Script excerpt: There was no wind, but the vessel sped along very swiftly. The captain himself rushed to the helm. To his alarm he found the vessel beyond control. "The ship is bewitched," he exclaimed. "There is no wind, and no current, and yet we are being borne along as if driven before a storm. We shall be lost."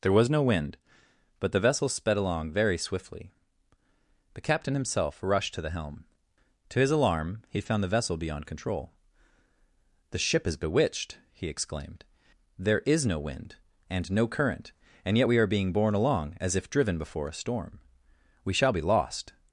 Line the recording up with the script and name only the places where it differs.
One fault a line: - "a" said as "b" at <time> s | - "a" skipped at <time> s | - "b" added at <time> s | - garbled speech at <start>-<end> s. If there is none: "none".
none